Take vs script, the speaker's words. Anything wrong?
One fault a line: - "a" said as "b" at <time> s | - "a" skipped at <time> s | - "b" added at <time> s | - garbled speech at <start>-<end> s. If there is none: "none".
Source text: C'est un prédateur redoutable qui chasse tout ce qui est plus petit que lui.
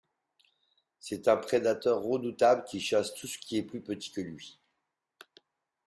none